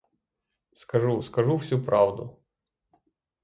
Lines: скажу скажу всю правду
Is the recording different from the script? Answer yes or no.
no